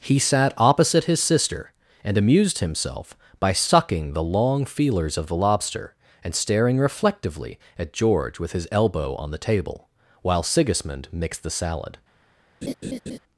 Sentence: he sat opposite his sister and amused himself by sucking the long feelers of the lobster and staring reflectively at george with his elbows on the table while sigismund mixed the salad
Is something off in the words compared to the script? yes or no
yes